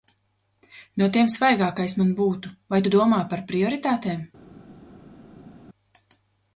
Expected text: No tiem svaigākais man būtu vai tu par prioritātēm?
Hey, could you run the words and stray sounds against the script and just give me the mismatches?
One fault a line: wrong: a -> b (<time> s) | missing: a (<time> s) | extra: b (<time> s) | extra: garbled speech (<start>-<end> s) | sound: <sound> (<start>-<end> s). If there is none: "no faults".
extra: domā (3.0 s)